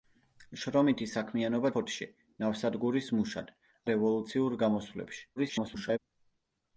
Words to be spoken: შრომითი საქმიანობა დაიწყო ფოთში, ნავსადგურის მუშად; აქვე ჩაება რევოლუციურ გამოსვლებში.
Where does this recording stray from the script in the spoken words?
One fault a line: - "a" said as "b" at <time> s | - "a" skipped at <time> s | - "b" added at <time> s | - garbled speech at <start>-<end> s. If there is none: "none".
- "დაიწყო" skipped at 1.7 s
- "აქვე ჩაება" skipped at 3.5 s
- garbled speech at 5.4-6.0 s